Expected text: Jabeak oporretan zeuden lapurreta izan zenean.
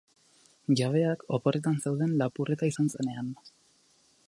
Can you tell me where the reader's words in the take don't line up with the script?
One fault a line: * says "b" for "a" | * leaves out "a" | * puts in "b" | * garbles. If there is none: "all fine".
all fine